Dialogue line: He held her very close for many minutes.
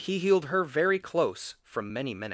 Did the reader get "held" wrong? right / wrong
wrong